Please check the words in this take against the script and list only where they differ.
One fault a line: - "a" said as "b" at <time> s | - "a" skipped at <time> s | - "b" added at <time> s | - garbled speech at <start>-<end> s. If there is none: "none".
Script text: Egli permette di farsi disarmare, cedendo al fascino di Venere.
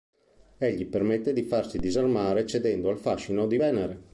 none